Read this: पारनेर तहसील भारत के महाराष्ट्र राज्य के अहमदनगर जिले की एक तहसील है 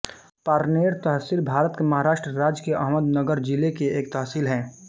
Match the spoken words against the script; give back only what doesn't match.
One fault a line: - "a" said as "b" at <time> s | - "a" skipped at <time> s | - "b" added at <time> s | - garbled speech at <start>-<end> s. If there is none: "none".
none